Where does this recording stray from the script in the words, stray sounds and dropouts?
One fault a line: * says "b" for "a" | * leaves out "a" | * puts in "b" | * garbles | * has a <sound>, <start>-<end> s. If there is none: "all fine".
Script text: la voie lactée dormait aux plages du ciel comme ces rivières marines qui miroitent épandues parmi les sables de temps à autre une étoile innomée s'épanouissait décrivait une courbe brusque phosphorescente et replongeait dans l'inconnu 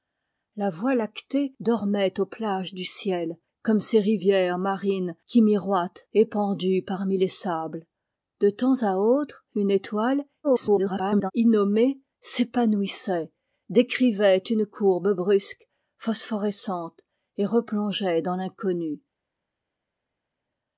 * garbles